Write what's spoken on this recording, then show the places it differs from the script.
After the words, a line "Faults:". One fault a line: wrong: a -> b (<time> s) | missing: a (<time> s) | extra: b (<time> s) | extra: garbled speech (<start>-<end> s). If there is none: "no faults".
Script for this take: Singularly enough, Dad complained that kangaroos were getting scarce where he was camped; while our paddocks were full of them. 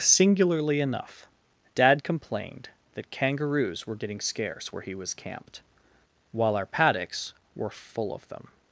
Singularly enough, Dad complained that kangaroos were getting scarce where he was camped; while our paddocks were full of them.
Faults:
no faults